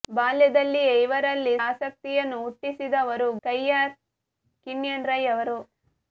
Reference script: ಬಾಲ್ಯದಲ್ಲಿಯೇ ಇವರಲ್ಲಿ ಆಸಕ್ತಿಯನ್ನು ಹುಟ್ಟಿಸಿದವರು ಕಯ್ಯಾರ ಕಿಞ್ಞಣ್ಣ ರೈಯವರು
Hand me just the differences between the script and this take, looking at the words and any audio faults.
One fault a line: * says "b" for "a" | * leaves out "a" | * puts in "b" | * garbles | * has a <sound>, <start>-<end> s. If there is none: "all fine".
all fine